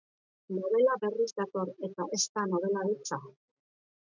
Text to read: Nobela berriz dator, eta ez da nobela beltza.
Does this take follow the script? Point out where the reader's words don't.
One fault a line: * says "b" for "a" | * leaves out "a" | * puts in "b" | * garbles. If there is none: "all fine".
all fine